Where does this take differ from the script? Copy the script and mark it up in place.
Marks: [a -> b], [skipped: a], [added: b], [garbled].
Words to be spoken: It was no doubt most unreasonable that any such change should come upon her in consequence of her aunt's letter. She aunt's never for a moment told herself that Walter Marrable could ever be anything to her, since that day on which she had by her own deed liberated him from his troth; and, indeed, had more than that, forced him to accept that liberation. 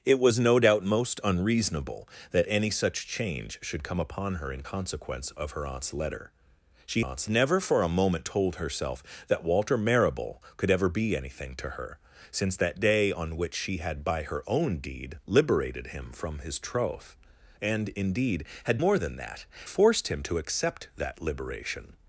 It was no doubt most unreasonable that any such change should come upon her in consequence of her aunt's letter. She aunt's never for a moment told herself that Walter Marrable could ever be anything to her, since that day on which she had by her own deed liberated him from his troth; and, indeed, had more than that, forced him to accept that liberation.